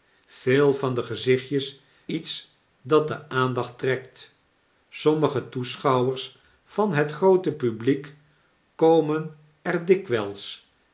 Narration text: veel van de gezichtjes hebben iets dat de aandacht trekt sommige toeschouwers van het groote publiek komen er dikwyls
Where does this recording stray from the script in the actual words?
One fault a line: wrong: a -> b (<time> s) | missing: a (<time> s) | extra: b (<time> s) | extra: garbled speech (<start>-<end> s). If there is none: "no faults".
missing: hebben (1.8 s)